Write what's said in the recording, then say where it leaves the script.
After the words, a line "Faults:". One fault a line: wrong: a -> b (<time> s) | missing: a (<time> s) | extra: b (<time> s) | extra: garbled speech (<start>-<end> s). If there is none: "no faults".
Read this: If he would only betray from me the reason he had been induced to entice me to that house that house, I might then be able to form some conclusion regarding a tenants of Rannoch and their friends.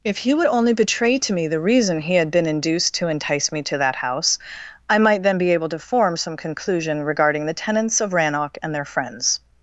If he would only betray to me the reason he had been induced to entice me to that house, I might then be able to form some conclusion regarding the tenants of Rannoch and their friends.
Faults:
wrong: from -> to (1.2 s)
missing: that house (4.4 s)
wrong: a -> the (7.5 s)